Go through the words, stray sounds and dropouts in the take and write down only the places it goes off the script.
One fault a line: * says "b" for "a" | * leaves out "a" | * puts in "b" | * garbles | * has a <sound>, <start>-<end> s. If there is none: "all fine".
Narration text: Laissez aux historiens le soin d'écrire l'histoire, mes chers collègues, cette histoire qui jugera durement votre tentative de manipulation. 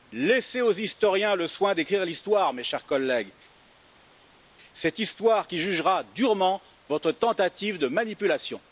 all fine